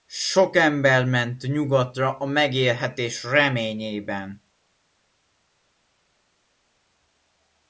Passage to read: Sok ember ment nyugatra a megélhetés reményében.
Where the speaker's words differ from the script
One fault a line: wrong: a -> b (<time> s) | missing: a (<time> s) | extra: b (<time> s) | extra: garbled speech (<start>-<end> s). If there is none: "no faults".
no faults